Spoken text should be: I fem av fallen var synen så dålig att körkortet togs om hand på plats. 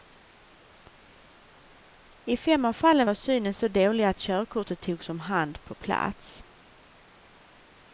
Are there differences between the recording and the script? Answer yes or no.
no